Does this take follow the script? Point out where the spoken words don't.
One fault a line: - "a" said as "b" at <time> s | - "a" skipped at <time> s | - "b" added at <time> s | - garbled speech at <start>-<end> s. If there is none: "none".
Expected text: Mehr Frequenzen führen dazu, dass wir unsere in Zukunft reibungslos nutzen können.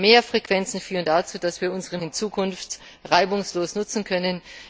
none